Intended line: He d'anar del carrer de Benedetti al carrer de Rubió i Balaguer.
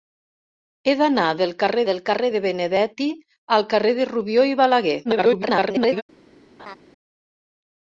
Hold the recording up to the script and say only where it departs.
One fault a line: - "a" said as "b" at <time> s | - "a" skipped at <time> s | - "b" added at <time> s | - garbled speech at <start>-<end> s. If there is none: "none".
- "del carrer" added at 1.9 s
- garbled speech at 5.0-6.0 s